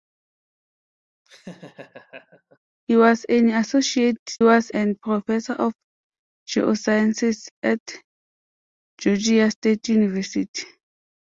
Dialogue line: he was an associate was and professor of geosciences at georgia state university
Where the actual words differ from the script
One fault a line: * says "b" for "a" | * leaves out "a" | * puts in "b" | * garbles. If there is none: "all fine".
all fine